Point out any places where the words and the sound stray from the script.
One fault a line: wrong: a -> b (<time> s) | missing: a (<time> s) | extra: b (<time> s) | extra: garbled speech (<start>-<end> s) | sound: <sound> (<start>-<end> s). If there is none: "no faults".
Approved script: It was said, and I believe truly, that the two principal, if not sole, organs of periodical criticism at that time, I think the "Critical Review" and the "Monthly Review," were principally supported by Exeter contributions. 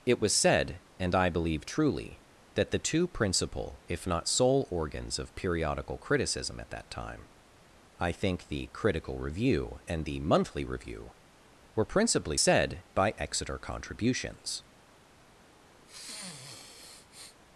wrong: supported -> said (12.4 s)
sound: sniff (15.8-17.4 s)